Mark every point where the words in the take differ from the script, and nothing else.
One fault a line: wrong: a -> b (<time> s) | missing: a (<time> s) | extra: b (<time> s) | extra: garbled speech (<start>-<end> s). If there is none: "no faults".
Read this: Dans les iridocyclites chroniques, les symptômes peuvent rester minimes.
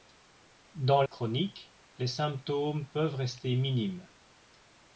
missing: les iridocyclites (1.0 s)